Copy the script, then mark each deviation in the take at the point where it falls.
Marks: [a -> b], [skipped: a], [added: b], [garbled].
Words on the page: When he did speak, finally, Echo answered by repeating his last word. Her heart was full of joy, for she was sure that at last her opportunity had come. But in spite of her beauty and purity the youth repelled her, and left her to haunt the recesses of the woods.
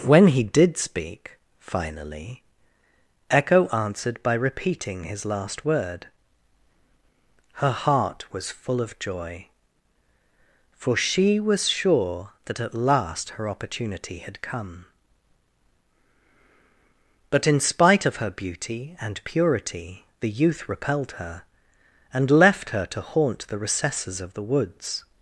When he did speak, finally, Echo answered by repeating his last word. Her heart was full of joy, for she was sure that at last her opportunity had come. But in spite of her beauty and purity the youth repelled her, and left her to haunt the recesses of the woods.